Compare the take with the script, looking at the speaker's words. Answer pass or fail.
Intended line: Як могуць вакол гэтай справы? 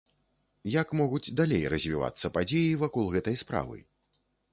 fail